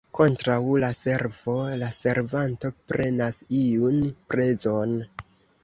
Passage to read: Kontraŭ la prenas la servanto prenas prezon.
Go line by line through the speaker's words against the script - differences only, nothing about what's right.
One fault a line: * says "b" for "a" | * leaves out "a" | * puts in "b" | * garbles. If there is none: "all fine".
* says "servo" for "prenas"
* puts in "iun"